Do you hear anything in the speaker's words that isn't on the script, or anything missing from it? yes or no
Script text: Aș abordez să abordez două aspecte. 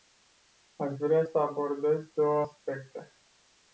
yes